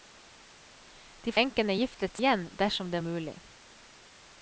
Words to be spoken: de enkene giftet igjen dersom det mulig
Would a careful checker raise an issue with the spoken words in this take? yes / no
no